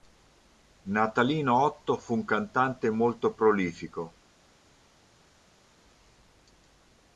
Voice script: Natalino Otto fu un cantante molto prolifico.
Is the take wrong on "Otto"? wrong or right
right